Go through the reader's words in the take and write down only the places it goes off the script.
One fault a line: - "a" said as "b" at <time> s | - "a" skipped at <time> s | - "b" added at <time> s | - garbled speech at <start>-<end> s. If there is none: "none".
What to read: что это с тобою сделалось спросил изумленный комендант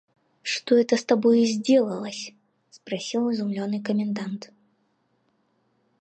none